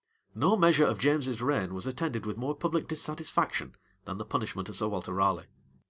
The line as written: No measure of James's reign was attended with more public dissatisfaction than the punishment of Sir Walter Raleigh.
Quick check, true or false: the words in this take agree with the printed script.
true